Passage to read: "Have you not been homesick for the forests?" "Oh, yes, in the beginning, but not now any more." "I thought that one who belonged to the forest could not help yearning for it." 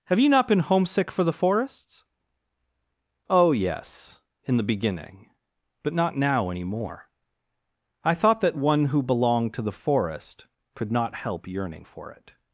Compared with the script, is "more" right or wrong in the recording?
right